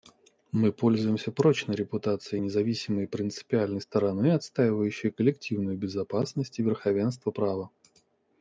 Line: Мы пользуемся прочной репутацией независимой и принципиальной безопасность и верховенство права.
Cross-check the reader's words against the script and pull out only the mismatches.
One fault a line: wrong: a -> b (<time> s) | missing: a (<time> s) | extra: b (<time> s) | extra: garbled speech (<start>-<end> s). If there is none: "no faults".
extra: стороны отстаивающей коллективную (3.8 s)